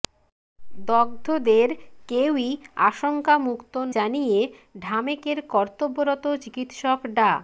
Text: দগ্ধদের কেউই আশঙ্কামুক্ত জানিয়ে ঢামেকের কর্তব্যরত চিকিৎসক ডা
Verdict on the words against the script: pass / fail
pass